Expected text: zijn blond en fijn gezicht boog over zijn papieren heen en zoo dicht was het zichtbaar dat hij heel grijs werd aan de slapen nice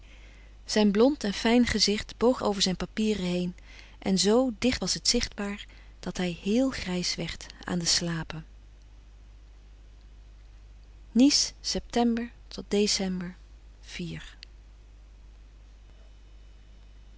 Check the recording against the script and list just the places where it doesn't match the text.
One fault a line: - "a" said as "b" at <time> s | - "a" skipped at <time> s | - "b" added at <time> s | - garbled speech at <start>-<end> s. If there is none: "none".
none